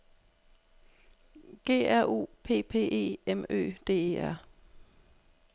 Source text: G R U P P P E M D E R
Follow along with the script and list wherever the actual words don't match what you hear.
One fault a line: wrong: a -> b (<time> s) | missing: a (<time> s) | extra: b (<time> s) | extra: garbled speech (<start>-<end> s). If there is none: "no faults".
missing: P (2.7 s)
extra: Ø (3.5 s)